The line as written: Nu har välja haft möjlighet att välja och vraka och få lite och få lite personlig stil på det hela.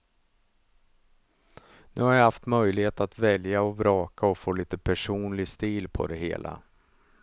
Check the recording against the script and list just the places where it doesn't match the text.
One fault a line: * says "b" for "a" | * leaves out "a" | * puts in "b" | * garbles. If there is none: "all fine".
* says "jag" for "välja"
* leaves out "och få lite"